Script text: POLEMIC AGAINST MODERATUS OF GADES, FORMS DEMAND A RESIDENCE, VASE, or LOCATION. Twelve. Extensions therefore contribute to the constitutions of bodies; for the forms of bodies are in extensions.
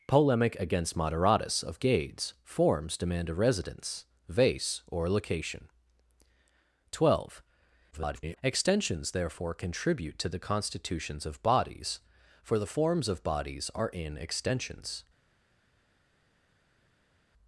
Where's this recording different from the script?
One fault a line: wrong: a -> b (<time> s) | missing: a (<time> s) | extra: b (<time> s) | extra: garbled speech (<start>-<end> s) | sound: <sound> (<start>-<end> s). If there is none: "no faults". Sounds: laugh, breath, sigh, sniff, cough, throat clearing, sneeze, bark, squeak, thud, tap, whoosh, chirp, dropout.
extra: garbled speech (7.9-8.4 s)